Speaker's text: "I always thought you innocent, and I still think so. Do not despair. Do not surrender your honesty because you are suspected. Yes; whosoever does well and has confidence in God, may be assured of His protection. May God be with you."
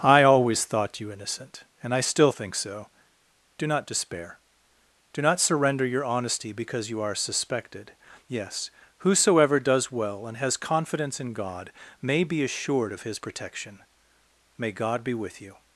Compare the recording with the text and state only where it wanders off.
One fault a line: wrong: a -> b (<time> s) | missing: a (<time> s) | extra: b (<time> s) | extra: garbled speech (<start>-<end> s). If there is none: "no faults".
no faults